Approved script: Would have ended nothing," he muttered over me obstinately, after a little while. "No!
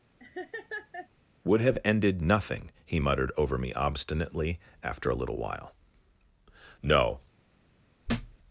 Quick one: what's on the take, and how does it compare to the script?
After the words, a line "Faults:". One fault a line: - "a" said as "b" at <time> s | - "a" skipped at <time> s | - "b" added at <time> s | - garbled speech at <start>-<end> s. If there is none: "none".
Would have ended nothing," he muttered over me obstinately, after a little while. "No!
Faults:
none